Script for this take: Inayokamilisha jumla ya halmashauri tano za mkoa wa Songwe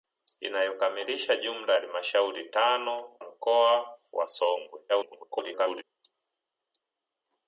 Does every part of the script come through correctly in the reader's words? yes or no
no